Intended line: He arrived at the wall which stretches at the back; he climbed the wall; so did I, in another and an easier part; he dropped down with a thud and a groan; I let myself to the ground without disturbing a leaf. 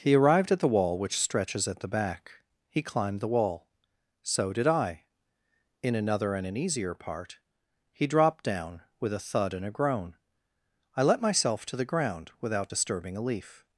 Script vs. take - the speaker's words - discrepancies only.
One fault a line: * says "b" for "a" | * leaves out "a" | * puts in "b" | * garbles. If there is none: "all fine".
all fine